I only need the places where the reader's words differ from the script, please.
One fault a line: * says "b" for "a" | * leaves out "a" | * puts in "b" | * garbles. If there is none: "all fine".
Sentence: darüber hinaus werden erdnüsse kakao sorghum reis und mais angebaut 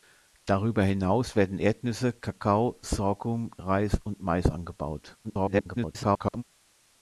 * garbles